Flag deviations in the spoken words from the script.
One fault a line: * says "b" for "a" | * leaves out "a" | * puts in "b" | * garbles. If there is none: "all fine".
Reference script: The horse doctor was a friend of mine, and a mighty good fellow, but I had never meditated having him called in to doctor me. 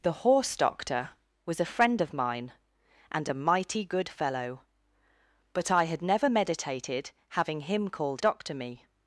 * leaves out "in to"